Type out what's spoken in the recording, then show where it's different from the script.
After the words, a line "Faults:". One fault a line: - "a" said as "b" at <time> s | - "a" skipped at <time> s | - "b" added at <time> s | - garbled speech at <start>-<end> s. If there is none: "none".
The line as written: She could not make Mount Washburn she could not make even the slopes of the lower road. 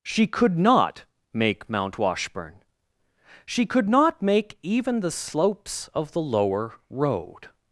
She could not make Mount Washburn she could not make even the slopes of the lower road.
Faults:
none